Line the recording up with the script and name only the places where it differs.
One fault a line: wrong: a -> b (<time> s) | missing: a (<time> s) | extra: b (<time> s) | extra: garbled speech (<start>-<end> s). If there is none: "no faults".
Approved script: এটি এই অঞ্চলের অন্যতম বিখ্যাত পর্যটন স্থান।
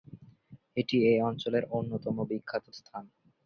missing: পর্যটন (2.6 s)